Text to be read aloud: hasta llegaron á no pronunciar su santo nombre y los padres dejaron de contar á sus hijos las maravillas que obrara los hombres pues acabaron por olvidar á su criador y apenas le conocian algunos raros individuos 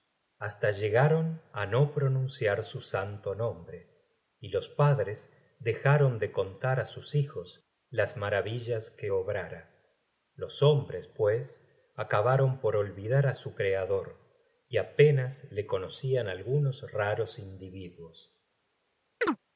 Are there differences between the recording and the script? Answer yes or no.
no